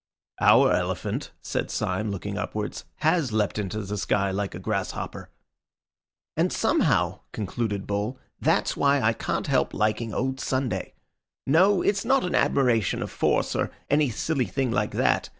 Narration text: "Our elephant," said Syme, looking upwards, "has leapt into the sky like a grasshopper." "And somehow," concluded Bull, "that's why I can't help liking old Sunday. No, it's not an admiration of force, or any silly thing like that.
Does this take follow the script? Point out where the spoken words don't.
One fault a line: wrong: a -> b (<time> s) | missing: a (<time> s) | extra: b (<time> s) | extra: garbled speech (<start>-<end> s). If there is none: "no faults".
no faults